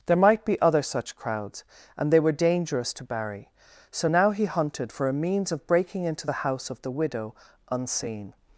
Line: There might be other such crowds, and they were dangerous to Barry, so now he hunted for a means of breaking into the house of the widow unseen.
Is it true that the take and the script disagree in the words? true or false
false